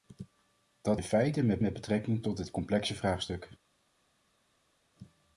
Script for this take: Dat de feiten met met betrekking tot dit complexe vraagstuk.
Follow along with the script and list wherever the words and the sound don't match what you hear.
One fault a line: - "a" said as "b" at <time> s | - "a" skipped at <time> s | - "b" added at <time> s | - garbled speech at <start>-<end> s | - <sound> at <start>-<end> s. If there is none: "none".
none